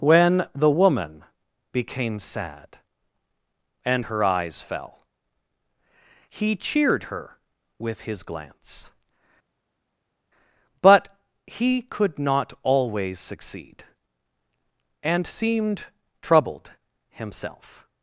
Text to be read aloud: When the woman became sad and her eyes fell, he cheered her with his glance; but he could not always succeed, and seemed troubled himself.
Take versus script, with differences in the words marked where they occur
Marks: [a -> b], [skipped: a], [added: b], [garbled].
When the woman became sad and her eyes fell, he cheered her with his glance; but he could not always succeed, and seemed troubled himself.